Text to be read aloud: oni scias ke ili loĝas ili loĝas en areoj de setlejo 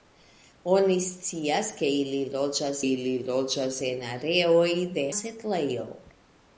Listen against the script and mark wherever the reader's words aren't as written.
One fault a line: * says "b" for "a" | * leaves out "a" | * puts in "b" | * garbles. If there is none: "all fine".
all fine